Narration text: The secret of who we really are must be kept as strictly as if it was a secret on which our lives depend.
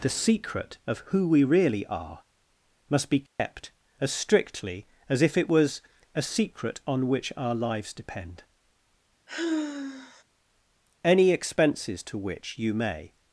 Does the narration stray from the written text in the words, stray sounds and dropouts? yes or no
yes